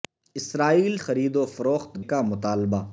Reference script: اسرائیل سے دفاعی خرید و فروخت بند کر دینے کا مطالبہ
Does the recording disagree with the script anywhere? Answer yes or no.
yes